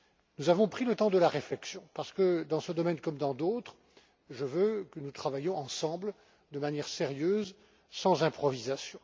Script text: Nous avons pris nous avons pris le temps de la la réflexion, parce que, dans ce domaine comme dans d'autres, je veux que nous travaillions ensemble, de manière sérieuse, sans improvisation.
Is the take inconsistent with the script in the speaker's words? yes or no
yes